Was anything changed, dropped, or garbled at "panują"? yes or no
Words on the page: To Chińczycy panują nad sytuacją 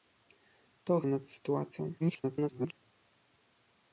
yes